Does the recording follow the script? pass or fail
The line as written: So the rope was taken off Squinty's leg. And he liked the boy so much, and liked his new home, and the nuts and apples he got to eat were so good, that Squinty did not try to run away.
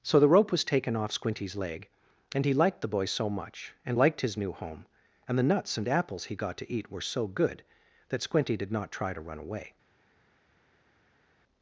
pass